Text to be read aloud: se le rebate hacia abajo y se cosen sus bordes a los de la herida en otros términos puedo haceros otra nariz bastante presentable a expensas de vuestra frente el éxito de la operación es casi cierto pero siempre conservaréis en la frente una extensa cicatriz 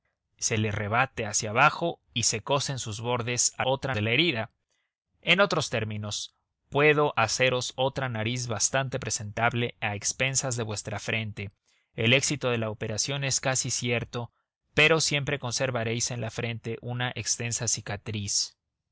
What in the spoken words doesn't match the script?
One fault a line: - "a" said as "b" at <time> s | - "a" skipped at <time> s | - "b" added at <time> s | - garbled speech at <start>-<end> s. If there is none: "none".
- "los" said as "otra" at 3.6 s